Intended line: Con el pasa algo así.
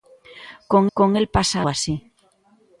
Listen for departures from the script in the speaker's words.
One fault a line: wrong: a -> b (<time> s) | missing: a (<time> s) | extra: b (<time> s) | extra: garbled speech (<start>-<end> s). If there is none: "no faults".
extra: con (0.9 s)
missing: algo (1.6 s)